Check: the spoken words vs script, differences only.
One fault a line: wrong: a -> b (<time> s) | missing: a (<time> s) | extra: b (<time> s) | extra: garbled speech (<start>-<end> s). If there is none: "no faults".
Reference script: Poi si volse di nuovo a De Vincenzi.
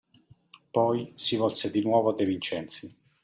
no faults